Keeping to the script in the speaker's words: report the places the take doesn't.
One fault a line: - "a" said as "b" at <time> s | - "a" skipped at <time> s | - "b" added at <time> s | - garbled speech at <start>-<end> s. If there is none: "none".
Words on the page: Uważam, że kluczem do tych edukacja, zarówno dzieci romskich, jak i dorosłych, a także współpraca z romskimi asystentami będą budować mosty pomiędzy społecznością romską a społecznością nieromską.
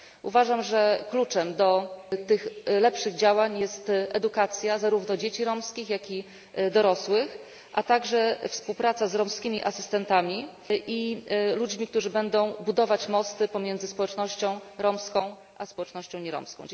- "lepszych działań jest" added at 2.6 s
- "i ludźmi którzy" added at 10.7 s